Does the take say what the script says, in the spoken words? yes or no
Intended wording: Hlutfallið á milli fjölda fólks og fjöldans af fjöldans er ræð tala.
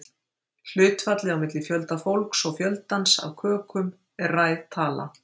no